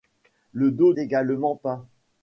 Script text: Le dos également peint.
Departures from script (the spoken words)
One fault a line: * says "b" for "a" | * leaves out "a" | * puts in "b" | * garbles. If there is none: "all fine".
all fine